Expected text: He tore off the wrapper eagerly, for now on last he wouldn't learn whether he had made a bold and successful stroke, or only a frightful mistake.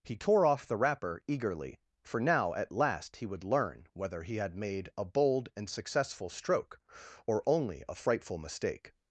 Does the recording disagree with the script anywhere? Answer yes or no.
yes